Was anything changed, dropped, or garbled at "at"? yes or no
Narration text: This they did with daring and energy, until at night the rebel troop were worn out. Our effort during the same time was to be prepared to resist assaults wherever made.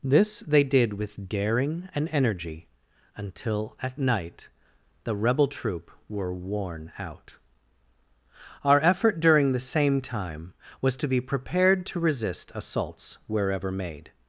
no